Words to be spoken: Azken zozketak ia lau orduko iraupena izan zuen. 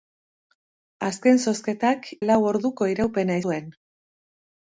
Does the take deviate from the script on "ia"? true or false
true